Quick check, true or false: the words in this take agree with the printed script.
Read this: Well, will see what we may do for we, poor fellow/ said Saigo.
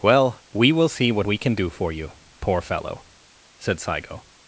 false